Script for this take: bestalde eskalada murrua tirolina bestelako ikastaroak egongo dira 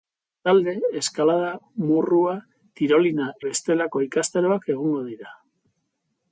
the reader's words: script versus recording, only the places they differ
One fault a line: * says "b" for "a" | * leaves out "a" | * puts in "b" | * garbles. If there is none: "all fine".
all fine